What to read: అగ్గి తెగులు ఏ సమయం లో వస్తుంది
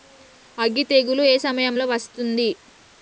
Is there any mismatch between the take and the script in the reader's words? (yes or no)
no